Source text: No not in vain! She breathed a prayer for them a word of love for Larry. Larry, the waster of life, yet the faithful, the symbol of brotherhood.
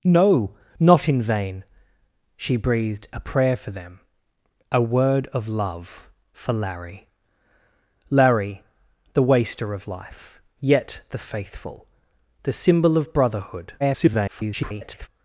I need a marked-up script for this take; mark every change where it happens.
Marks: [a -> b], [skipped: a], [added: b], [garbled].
No not in vain! She breathed a prayer for them a word of love for Larry. Larry, the waster of life, yet the faithful, the symbol of brotherhood. [garbled]